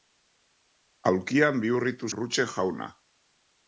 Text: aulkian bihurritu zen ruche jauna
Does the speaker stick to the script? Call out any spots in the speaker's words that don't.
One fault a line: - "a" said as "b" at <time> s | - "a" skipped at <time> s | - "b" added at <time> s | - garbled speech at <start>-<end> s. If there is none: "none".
- "zen" skipped at 2.1 s